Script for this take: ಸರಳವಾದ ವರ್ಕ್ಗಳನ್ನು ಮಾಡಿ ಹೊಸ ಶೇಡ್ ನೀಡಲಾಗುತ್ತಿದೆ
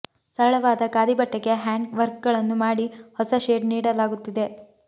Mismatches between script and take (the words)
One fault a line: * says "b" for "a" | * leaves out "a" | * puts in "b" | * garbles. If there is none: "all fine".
* puts in "ಖಾದಿ ಬಟ್ಟೆಗೆ ಹ್ಯಾಂಡ್"